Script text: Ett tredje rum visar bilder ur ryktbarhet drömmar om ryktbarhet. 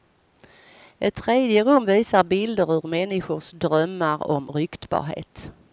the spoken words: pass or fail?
fail